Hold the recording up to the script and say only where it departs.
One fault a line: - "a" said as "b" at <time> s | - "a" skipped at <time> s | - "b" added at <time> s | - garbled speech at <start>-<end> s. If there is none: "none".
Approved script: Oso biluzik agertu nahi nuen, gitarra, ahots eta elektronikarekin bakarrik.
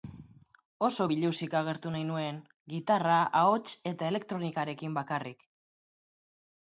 none